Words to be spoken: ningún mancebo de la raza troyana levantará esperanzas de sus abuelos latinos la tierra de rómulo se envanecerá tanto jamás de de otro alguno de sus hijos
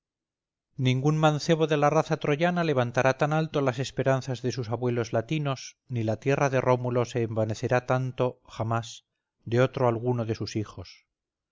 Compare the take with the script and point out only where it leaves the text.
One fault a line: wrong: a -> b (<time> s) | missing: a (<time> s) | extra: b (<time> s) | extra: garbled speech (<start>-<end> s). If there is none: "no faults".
extra: tan alto las (3.2 s)
extra: ni (5.9 s)
missing: de (9.6 s)